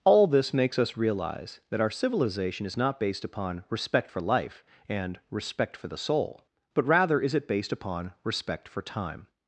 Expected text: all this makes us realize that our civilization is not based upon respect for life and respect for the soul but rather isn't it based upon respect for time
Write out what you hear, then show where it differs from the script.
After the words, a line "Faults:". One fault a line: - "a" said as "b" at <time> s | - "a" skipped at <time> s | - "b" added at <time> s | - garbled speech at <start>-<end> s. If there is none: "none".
all this makes us realize that our civilization is not based upon respect for life and respect for the soul but rather is it based upon respect for time
Faults:
- "isn't" said as "is" at 7.2 s